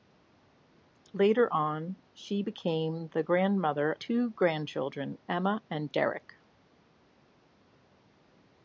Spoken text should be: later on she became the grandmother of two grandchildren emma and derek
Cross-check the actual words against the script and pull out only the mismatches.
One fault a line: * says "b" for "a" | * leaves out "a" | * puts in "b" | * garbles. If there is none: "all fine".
* leaves out "of"